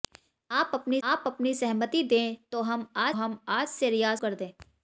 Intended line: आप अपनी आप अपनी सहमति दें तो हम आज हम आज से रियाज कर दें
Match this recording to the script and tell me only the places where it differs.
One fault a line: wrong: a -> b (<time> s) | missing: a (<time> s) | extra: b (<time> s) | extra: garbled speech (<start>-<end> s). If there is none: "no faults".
no faults